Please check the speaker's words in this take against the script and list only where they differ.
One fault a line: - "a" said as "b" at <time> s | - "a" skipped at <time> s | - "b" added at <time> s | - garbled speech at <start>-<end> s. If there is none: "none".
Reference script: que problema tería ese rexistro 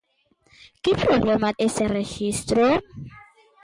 - "tería" skipped at 1.5 s